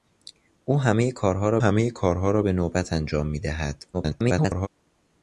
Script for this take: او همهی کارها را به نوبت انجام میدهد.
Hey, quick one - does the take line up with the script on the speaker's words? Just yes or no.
no